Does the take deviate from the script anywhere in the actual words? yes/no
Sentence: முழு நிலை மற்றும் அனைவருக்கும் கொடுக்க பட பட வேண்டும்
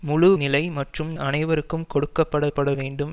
no